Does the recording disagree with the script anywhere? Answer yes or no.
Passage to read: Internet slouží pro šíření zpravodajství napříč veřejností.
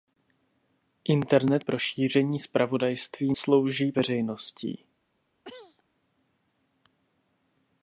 yes